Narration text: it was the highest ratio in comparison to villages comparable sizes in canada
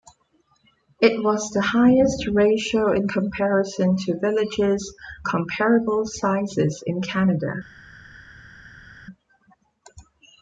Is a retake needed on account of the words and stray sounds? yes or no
no